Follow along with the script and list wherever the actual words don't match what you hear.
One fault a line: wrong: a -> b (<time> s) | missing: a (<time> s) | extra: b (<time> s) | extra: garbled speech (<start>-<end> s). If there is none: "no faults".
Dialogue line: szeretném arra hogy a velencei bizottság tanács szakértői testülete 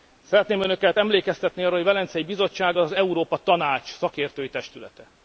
extra: önöket emlékeztetni (0.6 s)
extra: az európa (2.8 s)